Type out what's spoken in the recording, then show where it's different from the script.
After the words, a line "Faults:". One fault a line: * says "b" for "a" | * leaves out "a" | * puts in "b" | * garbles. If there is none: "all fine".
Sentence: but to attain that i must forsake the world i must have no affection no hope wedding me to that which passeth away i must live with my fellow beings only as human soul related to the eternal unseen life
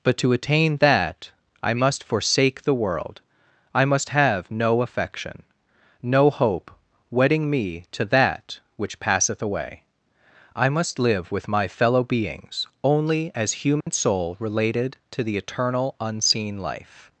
but to attain that i must forsake the world i must have no affection no hope wedding me to that which passeth away i must live with my fellow beings only as human soul related to the eternal unseen life
Faults:
all fine